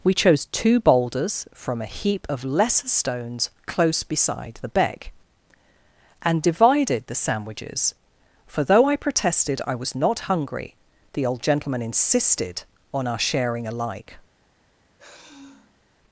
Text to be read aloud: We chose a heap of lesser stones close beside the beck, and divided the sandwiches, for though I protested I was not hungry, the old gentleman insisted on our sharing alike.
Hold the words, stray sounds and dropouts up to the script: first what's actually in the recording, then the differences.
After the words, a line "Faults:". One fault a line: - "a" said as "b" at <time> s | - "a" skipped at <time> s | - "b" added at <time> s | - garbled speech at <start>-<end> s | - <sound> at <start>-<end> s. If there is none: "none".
We chose two boulders from a heap of lesser stones close beside the beck, and divided the sandwiches, for though I protested I was not hungry, the old gentleman insisted on our sharing alike.
Faults:
- "two boulders from" added at 0.5 s
- sigh at 15.0-15.8 s